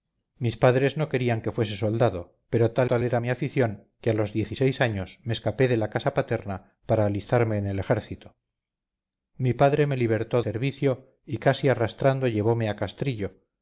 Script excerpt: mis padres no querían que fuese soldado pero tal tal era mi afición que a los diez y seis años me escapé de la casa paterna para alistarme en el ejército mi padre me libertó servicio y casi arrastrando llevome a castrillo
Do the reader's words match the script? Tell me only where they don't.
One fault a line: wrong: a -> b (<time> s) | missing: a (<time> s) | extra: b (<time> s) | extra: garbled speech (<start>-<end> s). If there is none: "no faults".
no faults